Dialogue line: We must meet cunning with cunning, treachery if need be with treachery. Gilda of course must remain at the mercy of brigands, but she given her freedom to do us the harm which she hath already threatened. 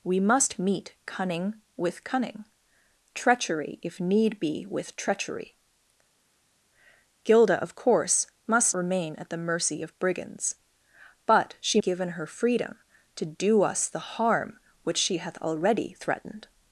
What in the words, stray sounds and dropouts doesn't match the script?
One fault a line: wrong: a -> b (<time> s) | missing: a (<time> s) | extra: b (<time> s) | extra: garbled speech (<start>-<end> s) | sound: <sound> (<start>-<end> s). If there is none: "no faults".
no faults